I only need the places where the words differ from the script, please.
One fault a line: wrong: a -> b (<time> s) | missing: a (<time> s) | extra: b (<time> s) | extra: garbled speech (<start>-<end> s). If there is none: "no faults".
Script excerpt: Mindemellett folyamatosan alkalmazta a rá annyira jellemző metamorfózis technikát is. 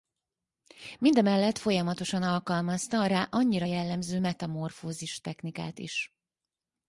no faults